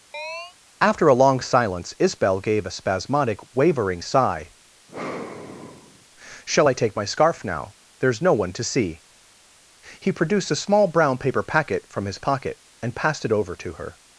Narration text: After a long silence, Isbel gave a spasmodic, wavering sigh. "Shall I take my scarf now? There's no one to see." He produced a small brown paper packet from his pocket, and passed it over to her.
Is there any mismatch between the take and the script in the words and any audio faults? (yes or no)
yes